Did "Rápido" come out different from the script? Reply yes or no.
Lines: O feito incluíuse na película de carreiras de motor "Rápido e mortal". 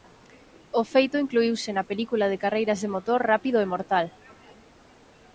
no